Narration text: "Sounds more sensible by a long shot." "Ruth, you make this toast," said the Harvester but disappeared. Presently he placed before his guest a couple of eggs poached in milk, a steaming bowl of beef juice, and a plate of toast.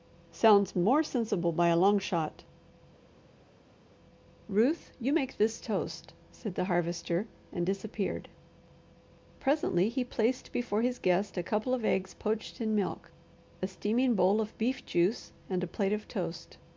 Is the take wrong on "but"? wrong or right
wrong